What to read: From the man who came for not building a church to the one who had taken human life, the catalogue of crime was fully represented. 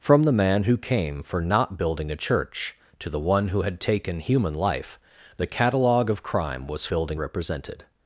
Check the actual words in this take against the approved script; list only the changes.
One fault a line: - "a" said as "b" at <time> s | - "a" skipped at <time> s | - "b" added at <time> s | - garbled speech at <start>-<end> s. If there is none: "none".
- "fully" said as "building" at 6.9 s